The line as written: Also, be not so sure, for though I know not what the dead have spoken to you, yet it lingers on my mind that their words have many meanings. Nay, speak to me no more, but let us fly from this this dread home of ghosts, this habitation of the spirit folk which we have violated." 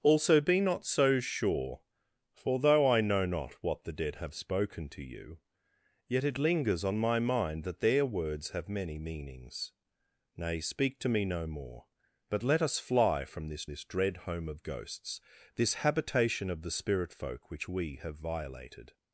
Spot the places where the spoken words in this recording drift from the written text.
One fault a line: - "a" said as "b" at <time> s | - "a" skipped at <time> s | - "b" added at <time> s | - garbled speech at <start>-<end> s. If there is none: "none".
none